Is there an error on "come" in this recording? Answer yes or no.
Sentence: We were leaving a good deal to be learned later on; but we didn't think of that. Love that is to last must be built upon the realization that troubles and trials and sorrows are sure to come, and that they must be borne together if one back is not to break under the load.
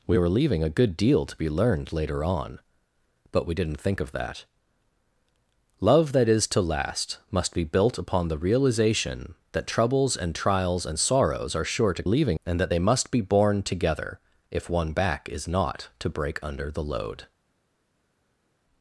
yes